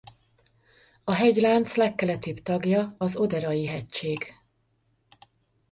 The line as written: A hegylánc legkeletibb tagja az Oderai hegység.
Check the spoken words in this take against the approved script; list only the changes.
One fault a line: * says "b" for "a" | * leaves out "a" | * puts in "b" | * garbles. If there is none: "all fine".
all fine